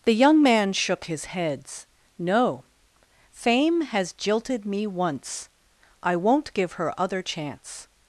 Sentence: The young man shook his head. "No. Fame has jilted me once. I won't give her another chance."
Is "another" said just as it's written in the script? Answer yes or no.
no